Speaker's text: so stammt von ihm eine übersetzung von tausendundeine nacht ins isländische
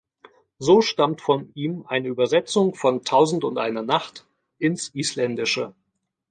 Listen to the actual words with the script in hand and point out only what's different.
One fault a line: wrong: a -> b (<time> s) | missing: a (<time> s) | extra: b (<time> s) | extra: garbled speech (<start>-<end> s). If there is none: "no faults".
no faults